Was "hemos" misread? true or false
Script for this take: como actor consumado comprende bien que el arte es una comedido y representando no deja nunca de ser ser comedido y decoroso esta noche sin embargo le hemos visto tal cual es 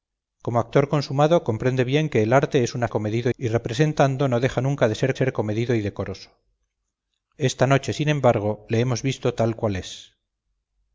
false